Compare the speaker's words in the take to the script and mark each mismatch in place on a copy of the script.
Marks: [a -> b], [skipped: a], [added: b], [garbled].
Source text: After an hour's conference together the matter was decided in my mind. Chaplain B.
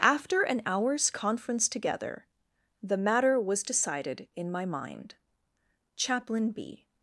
After an hour's conference together the matter was decided in my mind. Chaplain B.